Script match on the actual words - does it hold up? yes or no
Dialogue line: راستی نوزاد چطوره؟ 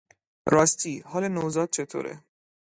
no